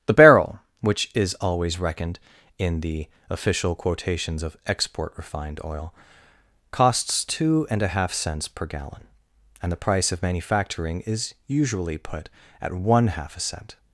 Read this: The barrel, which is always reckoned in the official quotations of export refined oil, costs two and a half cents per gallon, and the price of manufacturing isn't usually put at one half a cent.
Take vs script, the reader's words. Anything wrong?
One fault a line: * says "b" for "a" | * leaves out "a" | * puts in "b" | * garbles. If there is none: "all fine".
* says "is" for "isn't"